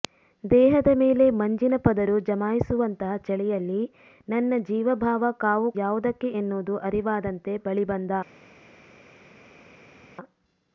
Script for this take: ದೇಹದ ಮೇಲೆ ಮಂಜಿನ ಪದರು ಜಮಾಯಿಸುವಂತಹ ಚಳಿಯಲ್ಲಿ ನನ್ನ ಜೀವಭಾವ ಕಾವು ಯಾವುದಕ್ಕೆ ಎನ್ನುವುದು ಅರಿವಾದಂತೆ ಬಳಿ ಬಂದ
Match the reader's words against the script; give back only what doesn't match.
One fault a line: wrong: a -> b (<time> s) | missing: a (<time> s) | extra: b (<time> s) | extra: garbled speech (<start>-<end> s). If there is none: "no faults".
no faults